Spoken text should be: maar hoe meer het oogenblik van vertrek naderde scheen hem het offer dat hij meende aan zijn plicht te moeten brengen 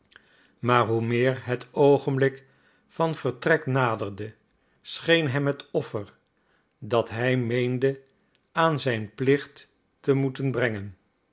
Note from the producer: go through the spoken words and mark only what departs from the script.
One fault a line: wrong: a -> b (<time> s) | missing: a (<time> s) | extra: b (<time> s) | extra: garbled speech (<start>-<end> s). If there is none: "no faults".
no faults